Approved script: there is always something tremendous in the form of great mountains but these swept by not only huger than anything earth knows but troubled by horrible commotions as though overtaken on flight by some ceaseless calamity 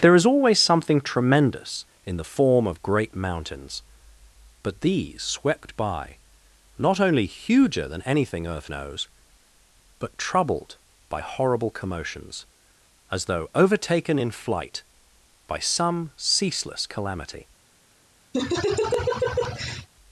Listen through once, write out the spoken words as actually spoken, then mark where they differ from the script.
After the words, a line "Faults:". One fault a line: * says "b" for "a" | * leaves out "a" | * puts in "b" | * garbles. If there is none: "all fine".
there is always something tremendous in the form of great mountains but these swept by not only huger than anything earth knows but troubled by horrible commotions as though overtaken in flight by some ceaseless calamity
Faults:
* says "in" for "on"